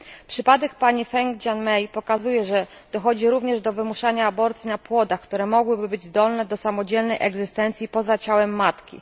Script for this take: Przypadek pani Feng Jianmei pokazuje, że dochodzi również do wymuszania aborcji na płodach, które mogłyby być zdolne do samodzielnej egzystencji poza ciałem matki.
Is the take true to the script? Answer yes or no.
yes